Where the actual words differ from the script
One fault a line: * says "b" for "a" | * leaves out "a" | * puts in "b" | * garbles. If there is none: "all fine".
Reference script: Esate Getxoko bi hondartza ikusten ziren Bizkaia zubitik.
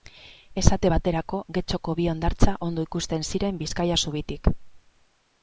* puts in "baterako"
* puts in "ondo"